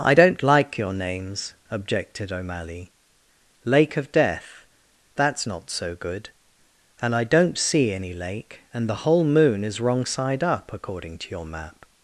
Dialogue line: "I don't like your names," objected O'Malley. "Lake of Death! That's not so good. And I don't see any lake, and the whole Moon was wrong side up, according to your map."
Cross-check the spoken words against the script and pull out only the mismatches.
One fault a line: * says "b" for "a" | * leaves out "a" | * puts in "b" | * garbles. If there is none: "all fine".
* says "is" for "was"